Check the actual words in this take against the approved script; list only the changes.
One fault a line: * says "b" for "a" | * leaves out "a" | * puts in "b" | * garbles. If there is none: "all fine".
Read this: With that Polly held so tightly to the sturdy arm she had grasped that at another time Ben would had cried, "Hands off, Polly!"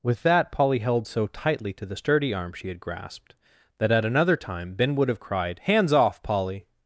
* says "have" for "had"